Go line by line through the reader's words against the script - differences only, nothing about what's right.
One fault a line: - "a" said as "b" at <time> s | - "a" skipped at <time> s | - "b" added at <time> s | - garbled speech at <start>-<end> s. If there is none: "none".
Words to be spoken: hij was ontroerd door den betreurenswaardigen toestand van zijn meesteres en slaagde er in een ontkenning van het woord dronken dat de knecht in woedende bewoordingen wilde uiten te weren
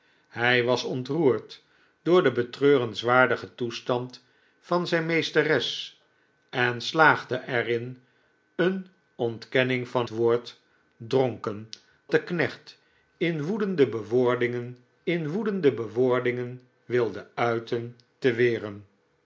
- "het" skipped at 10.1 s
- "dat" skipped at 11.7 s
- "in woedende bewoordingen" added at 15.0 s